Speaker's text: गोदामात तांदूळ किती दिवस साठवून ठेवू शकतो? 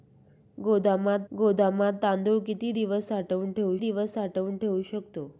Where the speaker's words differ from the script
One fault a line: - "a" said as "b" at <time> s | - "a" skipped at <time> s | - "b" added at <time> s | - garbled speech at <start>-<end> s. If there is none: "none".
- "गोदामात" added at 1.3 s
- "दिवस साठवून ठेवू" added at 3.8 s